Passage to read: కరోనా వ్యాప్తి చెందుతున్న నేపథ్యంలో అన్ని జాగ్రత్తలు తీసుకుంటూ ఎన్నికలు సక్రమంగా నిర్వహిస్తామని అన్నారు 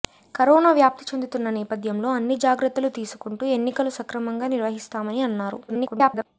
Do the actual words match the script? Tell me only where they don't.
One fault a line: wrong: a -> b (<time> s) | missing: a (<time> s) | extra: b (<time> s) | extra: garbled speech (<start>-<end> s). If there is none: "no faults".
extra: garbled speech (5.7-6.3 s)